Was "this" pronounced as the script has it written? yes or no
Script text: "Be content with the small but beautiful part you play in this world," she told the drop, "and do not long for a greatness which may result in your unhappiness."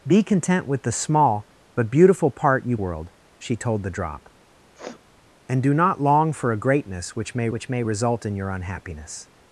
no